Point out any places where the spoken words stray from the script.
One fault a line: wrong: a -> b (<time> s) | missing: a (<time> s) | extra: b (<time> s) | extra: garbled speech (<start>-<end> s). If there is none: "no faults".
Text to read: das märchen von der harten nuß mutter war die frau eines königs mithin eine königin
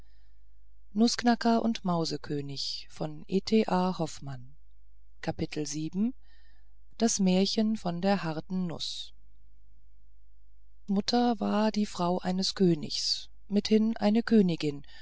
no faults